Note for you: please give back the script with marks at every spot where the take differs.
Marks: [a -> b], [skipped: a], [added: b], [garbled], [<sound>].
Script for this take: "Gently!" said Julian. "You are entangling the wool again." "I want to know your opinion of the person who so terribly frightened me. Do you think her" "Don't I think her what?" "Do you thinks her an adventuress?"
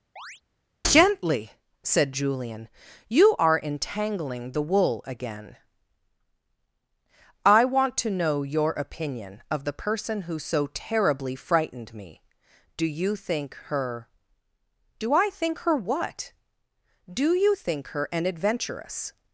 [chirp] "Gently!" said Julian. "You are entangling the wool again." "I want to know your opinion of the person who so terribly frightened me. Do you think her" ["Don't -> Do] I think her what?" "Do you [thinks -> think] her an adventuress?"